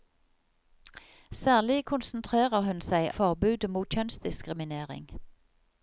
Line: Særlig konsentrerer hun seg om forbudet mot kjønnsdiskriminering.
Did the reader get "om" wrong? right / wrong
wrong